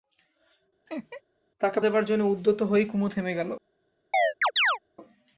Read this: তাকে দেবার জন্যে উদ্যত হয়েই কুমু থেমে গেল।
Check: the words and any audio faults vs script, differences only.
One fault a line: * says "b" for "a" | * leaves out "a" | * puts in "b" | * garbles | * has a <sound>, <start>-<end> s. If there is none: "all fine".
* has a laugh, 0.9-1.2 s
* has a chirp, 4.1-4.8 s